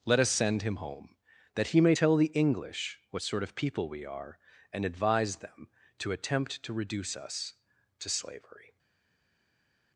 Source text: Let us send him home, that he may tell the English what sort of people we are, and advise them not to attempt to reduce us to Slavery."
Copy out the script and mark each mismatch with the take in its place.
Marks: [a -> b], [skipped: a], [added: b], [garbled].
Let us send him home, that he may tell the English what sort of people we are, and advise them [skipped: not] to attempt to reduce us to Slavery."